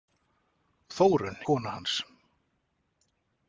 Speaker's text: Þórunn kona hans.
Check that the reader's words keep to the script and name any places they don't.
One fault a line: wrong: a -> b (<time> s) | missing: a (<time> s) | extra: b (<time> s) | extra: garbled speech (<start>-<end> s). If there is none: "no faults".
no faults